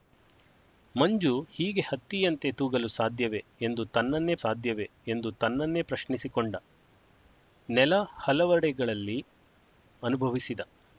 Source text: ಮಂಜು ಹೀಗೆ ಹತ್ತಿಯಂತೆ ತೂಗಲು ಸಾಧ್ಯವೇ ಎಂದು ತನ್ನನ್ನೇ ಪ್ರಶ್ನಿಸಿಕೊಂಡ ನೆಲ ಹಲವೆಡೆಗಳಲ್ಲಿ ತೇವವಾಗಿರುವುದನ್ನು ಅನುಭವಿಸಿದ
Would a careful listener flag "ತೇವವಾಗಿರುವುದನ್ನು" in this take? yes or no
yes